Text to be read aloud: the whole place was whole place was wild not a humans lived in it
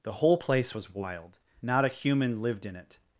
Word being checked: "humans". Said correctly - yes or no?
no